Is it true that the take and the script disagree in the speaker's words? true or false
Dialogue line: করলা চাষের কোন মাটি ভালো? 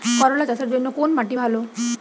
true